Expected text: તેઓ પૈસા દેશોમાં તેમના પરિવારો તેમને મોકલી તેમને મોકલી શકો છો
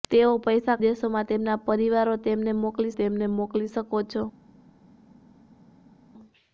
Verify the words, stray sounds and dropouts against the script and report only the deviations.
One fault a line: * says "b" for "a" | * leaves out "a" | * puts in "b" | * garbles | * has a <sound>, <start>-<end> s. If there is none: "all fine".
all fine